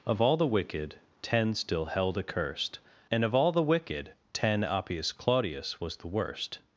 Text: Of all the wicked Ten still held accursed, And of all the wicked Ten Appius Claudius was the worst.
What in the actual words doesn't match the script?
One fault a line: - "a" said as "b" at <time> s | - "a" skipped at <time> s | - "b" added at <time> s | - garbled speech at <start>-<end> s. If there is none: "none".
none